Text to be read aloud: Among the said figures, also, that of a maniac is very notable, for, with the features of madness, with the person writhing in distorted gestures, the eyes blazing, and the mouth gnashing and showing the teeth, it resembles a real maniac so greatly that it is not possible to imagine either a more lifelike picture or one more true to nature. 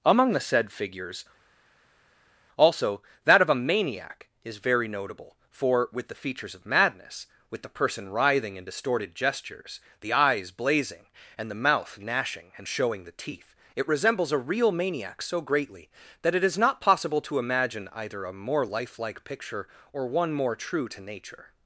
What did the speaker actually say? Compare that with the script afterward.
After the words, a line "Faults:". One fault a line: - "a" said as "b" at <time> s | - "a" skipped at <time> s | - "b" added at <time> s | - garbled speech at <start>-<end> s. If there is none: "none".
Among the said figures, also, that of a maniac is very notable, for, with the features of madness, with the person writhing in distorted gestures, the eyes blazing, and the mouth gnashing and showing the teeth, it resembles a real maniac so greatly that it is not possible to imagine either a more lifelike picture or one more true to nature.
Faults:
none